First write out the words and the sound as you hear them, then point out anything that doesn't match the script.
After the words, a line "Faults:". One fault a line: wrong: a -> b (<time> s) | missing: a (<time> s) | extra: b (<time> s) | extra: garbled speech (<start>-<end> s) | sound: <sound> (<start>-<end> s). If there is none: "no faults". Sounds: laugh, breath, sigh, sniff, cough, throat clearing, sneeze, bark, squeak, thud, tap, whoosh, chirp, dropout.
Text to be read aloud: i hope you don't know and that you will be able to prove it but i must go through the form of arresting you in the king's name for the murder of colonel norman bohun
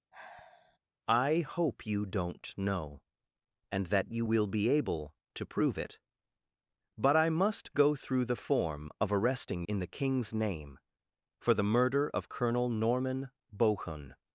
i hope you don't know and that you will be able to prove it but i must go through the form of arresting in the king's name for the murder of colonel norman bohun
Faults:
sound: sigh (0.1-0.8 s)
missing: you (9.6 s)